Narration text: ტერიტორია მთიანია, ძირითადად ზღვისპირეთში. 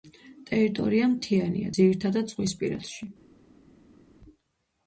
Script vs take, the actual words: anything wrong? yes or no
no